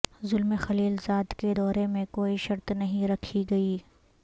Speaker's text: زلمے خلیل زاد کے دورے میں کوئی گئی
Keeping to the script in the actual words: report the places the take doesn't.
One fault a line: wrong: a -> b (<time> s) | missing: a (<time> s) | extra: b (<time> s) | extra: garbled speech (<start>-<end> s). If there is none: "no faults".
extra: شرط نہیں رکھی (2.4 s)